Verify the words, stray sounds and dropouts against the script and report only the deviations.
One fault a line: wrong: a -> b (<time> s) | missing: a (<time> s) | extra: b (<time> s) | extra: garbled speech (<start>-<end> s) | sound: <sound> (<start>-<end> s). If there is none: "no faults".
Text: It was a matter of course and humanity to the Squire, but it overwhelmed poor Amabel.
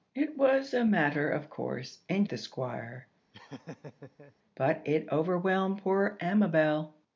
missing: humanity to (2.3 s)
sound: laugh (3.3-4.3 s)